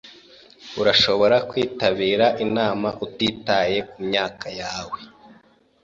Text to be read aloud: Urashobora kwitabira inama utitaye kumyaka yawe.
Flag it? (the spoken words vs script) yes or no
no